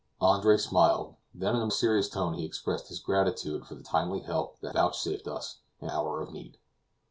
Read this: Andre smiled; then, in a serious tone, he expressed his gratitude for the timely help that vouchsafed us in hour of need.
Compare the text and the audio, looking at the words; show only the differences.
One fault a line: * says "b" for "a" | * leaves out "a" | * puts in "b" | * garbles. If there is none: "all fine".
all fine